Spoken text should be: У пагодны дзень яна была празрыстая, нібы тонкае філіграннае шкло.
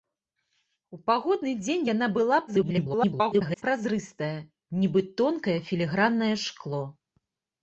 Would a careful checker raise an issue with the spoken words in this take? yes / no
yes